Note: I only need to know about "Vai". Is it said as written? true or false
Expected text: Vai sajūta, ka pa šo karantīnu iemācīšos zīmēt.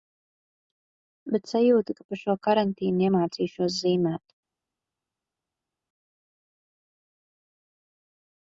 false